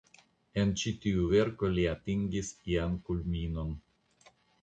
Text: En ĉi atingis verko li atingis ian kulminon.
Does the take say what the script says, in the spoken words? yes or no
no